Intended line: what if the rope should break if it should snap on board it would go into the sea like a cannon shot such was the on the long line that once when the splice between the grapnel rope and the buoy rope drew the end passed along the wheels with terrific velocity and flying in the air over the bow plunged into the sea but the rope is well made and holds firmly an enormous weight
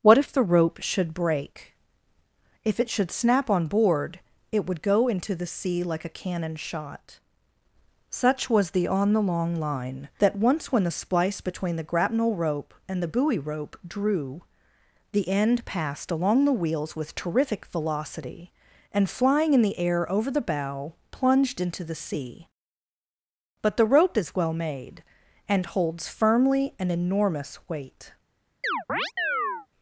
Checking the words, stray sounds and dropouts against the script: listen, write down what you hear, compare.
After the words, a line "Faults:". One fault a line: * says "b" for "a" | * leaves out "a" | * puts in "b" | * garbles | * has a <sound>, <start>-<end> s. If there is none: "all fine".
what if the rope should break if it should snap on board it would go into the sea like a cannon shot such was the on the long line that once when the splice between the grapnel rope and the buoy rope drew the end passed along the wheels with terrific velocity and flying in the air over the bow plunged into the sea but the rope is well made and holds firmly an enormous weight
Faults:
* has a chirp, 28.6-29.7 s